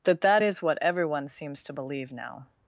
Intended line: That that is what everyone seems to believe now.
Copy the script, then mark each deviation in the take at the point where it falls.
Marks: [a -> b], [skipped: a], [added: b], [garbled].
That that is what everyone seems to believe now.